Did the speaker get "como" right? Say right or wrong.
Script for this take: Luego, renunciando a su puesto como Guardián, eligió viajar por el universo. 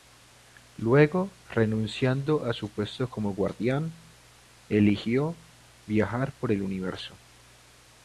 right